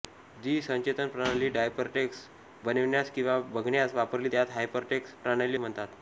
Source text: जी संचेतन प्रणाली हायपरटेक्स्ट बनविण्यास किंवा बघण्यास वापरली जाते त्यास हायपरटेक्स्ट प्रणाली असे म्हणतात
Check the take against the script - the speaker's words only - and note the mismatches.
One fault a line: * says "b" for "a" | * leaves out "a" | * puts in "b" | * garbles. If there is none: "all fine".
* leaves out "जाते"
* leaves out "असे"